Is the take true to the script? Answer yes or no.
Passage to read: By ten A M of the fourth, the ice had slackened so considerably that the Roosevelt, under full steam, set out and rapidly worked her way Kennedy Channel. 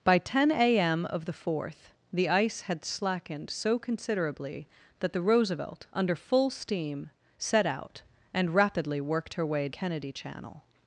yes